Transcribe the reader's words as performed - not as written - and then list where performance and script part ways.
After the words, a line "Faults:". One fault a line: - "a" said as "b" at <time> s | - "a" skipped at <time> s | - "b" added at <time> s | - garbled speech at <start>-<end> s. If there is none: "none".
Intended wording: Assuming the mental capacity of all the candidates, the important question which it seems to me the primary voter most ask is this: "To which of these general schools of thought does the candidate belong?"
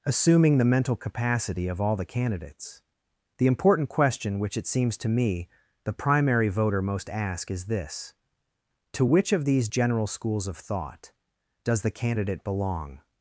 Assuming the mental capacity of all the candidates, the important question which it seems to me the primary voter most ask is this: "To which of these general schools of thought does the candidate belong?"
Faults:
none